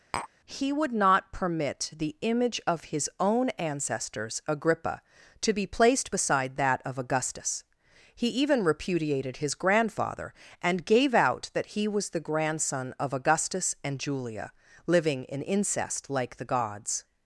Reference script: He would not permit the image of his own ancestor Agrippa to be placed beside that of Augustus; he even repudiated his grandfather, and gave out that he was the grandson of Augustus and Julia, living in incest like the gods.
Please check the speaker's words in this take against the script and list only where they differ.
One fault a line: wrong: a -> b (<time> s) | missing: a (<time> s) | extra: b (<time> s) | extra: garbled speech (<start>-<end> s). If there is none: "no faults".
wrong: ancestor -> ancestors (3.5 s)